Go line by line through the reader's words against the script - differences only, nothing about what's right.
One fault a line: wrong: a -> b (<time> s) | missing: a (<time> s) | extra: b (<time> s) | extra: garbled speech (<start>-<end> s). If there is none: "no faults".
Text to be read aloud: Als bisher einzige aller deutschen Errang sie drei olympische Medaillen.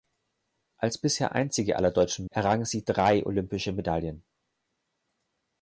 no faults